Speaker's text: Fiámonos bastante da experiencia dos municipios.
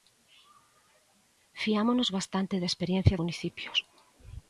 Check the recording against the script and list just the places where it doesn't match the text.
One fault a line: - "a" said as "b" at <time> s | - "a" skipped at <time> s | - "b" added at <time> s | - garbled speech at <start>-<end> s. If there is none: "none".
- "dos" skipped at 3.2 s